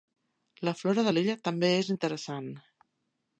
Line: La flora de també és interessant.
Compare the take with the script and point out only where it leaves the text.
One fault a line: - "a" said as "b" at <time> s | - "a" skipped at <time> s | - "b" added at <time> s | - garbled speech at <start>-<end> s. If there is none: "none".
- "l'illa" added at 1.1 s